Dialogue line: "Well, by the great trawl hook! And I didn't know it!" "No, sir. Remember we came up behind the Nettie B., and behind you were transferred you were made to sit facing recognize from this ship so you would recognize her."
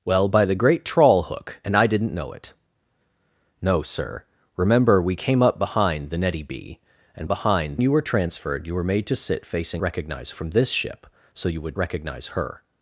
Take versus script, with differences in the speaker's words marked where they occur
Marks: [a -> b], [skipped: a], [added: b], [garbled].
"Well, by the great trawl hook! And I didn't know it!" "No, sir. Remember we came up behind the Nettie B., and behind you were transferred you were made to sit facing recognize from this ship so you would recognize her."